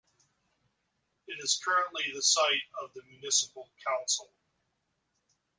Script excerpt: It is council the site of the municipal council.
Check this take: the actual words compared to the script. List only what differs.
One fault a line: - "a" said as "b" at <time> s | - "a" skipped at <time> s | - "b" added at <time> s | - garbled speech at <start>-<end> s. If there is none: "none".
- "council" said as "currently" at 1.6 s